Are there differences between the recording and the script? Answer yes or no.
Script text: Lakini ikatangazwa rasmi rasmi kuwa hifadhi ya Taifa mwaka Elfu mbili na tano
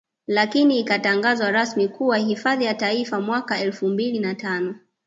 yes